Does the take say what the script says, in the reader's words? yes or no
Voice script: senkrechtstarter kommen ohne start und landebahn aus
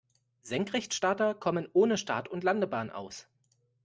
yes